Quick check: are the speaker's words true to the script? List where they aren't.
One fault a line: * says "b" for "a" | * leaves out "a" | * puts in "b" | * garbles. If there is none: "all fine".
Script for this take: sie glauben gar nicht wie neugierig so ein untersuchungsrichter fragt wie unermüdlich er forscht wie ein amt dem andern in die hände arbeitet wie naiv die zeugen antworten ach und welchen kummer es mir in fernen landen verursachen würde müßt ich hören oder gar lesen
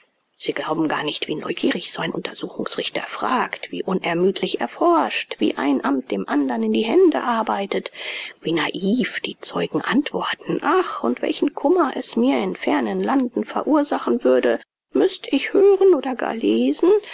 all fine